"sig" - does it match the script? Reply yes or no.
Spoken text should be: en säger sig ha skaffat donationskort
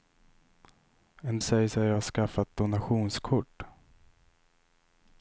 yes